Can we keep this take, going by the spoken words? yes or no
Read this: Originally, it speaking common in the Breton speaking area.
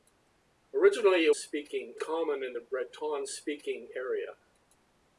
yes